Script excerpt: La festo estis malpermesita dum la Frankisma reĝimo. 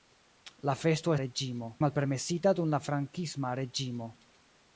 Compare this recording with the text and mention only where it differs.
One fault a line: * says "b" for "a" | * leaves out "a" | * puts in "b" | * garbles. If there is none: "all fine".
* says "reĝimo" for "estis"